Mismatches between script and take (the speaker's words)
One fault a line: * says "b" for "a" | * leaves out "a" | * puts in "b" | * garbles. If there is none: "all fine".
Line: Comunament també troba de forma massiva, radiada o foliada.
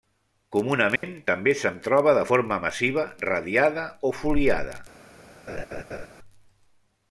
* puts in "se'n"